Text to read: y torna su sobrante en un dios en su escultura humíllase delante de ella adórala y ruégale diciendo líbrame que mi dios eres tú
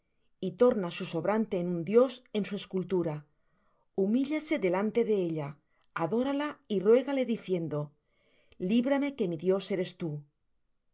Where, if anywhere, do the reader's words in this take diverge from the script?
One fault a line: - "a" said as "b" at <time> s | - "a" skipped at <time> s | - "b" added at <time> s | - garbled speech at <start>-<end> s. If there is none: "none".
none